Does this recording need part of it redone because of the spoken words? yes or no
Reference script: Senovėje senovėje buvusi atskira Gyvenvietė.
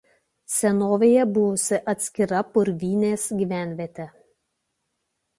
yes